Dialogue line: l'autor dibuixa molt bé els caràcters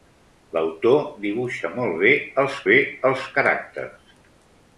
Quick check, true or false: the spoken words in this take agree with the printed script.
false